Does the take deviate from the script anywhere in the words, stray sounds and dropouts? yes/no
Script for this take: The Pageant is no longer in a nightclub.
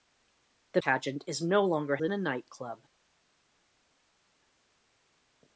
no